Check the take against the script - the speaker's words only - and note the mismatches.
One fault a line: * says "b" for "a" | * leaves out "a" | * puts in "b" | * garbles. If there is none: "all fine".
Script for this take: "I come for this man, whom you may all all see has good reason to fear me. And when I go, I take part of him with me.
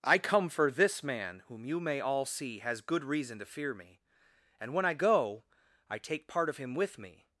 * leaves out "all"